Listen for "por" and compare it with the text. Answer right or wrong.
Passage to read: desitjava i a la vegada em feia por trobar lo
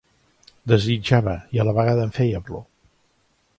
wrong